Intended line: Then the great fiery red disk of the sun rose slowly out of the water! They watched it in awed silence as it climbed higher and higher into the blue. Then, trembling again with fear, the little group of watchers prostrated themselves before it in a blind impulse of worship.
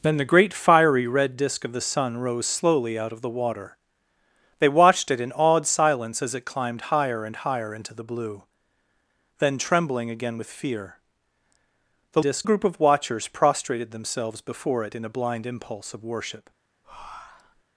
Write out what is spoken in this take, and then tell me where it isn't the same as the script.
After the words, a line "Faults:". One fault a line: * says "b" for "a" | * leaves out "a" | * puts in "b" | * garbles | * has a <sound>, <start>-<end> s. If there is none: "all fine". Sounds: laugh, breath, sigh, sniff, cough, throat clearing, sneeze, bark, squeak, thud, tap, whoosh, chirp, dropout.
Then the great fiery red disk of the sun rose slowly out of the water! They watched it in awed silence as it climbed higher and higher into the blue. Then, trembling again with fear, the disk group of watchers prostrated themselves before it in a blind impulse of worship.
Faults:
* says "disk" for "little"
* has a breath, 16.8-17.6 s